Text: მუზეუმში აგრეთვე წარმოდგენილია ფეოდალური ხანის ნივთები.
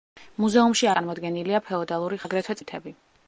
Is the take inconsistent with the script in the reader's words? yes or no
yes